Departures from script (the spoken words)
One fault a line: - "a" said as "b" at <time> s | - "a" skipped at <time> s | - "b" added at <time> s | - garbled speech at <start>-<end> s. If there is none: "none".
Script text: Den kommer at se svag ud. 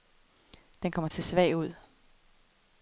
none